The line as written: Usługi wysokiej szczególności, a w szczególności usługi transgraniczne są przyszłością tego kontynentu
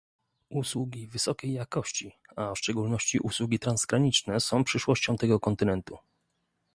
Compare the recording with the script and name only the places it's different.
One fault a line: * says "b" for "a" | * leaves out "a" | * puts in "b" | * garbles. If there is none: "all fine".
* says "jakości" for "szczególności"